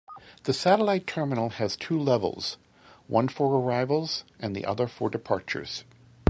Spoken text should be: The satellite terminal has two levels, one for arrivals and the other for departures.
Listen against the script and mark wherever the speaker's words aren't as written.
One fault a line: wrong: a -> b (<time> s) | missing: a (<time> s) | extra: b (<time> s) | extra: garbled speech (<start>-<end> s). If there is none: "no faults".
no faults